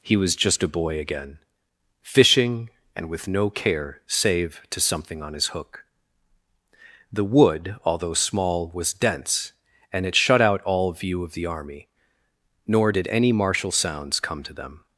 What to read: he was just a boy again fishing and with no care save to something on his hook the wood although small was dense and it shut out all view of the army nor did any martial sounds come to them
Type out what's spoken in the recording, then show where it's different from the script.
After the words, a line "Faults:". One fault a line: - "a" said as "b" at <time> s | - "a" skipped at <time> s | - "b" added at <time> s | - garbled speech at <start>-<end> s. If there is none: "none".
he was just a boy again fishing and with no care save to something on his hook the wood although small was dense and it shut out all view of the army nor did any martial sounds come to them
Faults:
none